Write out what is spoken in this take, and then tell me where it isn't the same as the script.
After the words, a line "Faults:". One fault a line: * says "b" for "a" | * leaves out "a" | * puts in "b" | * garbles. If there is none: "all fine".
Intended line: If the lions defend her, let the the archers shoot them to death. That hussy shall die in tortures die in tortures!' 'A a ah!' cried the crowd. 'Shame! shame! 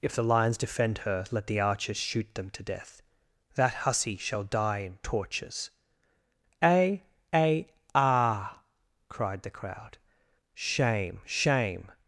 If the lions defend her, let the archers shoot them to death. That hussy shall die in tortures!' 'A a ah!' cried the crowd. 'Shame! shame!
Faults:
* leaves out "the"
* leaves out "die in tortures"